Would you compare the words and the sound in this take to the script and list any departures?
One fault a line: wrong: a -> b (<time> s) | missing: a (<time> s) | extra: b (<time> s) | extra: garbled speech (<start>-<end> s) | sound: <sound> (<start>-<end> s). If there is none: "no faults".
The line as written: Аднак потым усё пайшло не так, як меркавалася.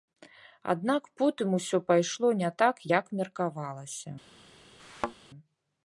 sound: thud (4.8-5.1 s)